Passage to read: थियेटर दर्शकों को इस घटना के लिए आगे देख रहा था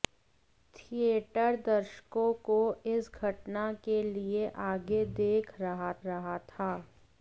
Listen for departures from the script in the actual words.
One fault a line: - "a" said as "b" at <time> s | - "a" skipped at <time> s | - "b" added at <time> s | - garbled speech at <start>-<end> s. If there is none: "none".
- "रहा" added at 6.1 s